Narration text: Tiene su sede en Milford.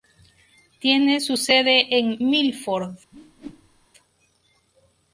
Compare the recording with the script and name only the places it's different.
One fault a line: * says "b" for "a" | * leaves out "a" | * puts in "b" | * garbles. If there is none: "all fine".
all fine